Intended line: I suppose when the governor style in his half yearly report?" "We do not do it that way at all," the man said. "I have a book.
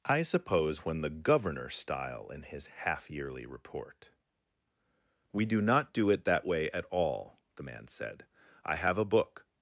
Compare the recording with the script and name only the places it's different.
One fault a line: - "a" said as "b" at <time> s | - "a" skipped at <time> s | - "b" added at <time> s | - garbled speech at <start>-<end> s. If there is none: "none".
none